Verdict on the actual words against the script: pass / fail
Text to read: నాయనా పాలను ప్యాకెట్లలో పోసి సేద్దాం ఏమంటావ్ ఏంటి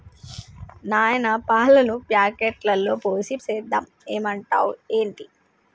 pass